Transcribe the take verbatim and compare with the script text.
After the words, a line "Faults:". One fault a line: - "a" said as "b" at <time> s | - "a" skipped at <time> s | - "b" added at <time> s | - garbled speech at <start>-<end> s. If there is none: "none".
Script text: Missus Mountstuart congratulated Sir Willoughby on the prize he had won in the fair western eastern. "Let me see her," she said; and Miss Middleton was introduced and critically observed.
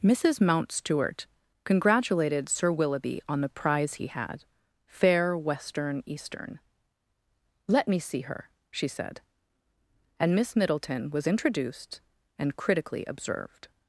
Missus Mountstuart congratulated Sir Willoughby on the prize he had fair western eastern. "Let me see her," she said; and Miss Middleton was introduced and critically observed.
Faults:
- "won in the" skipped at 4.5 s